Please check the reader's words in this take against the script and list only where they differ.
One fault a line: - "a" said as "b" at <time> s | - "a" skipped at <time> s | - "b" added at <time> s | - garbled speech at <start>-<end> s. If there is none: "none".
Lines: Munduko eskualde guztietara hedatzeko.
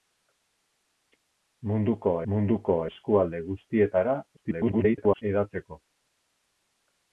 - "munduko" added at 2.3 s
- garbled speech at 4.4-5.2 s